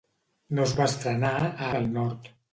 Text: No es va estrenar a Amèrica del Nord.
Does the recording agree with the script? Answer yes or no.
no